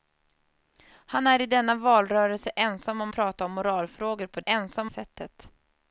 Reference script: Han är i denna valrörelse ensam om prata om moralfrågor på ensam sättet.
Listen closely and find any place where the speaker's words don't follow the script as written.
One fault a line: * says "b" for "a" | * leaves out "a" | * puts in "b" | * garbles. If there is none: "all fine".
all fine